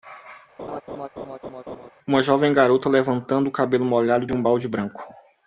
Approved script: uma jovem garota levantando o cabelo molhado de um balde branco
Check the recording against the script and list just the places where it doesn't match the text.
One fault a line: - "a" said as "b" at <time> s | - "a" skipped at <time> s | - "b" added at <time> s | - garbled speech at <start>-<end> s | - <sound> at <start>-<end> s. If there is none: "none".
- laugh at 0.6-1.9 s
- "de" skipped at 4.3 s